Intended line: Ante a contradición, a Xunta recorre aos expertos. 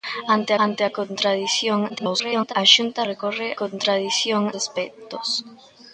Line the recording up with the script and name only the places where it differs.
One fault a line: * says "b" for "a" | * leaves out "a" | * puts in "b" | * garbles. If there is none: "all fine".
* puts in "ante"
* garbles
* says "contradición" for "aos"